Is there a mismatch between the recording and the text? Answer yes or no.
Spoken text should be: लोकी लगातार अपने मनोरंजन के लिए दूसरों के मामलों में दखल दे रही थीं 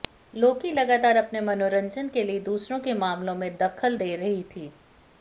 no